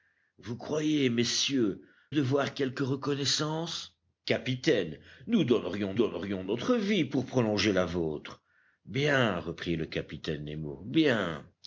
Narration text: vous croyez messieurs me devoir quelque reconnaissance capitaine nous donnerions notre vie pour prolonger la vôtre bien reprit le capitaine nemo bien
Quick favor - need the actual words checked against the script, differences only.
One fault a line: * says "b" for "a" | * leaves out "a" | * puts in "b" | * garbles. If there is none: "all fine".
* leaves out "me"
* puts in "donnerions"